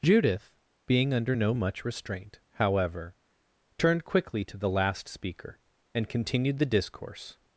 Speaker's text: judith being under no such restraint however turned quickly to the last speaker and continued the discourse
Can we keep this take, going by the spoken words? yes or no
no